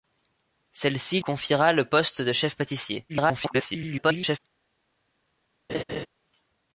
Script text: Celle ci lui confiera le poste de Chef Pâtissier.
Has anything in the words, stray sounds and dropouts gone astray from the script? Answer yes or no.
yes